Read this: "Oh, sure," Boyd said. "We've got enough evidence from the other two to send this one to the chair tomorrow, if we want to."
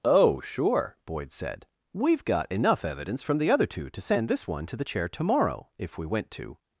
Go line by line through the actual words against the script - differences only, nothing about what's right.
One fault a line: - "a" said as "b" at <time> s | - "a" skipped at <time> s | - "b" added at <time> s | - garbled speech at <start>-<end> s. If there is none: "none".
- "want" said as "went" at 6.0 s